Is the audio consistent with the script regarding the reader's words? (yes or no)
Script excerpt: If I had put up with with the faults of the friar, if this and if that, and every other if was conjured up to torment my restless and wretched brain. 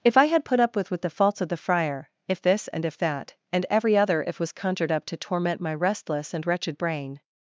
yes